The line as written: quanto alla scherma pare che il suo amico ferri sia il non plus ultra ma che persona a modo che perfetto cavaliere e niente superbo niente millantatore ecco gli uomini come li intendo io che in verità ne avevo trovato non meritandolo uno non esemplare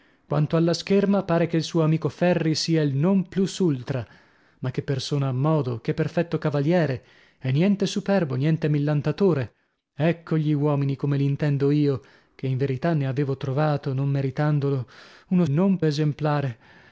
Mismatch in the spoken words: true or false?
false